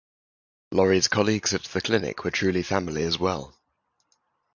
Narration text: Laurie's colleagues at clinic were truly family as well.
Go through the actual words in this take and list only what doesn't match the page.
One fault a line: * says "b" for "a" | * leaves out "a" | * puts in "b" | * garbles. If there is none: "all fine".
* puts in "the"